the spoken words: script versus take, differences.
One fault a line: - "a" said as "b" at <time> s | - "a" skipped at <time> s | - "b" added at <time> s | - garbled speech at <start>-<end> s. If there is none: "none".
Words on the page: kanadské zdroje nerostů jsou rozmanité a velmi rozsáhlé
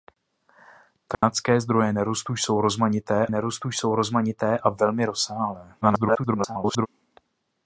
- "nerostů jsou rozmanité" added at 3.3 s
- garbled speech at 5.8-6.9 s